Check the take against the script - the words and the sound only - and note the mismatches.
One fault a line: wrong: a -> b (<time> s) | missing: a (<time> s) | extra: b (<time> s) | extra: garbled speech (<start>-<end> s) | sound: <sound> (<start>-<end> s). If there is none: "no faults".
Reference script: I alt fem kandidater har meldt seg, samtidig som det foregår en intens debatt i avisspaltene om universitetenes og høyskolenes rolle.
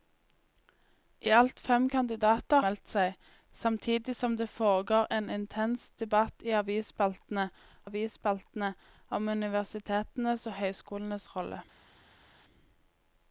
missing: har (2.6 s)
extra: avisspaltene (7.9 s)